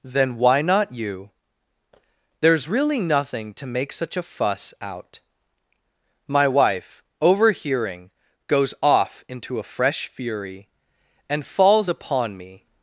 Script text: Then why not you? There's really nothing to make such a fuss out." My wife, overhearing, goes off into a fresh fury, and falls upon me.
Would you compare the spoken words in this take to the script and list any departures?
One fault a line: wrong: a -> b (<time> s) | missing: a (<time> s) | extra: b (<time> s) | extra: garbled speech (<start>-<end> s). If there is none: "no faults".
no faults